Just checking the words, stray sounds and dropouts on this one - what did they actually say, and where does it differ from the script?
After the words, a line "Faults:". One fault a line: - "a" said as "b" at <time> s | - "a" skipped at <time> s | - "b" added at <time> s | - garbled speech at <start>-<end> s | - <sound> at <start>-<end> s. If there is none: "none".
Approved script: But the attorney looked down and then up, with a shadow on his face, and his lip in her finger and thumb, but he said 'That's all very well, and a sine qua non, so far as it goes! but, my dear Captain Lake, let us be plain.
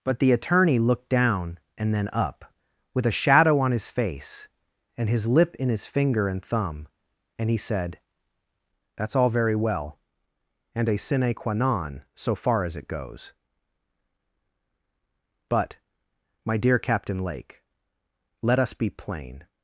But the attorney looked down and then up, with a shadow on his face, and his lip in his finger and thumb, and he said 'That's all very well, and a sine qua non, so far as it goes! but, my dear Captain Lake, let us be plain.
Faults:
- "her" said as "his" at 5.7 s
- "but" said as "and" at 7.4 s